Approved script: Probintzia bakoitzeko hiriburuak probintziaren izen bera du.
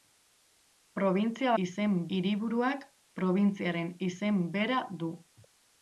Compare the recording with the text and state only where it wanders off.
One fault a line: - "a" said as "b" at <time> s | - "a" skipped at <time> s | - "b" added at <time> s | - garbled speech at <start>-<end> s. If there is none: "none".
- "bakoitzeko" said as "izen" at 1.6 s